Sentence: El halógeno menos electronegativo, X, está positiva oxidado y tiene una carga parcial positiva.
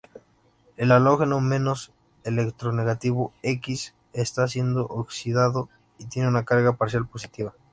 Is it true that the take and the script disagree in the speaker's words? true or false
true